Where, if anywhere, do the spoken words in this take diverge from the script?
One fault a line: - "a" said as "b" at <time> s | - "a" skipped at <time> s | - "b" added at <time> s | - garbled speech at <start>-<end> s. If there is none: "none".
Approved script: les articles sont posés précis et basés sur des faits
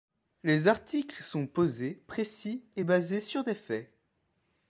none